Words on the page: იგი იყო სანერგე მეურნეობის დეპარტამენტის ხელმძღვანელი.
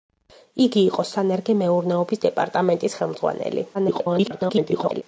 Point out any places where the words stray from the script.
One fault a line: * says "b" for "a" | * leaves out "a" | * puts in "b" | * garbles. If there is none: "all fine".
* garbles